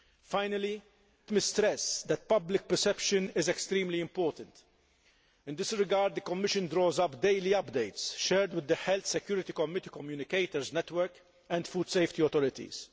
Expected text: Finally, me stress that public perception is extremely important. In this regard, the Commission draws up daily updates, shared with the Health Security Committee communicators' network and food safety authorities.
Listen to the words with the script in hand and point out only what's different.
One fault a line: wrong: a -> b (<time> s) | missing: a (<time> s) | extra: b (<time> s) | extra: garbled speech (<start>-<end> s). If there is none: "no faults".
no faults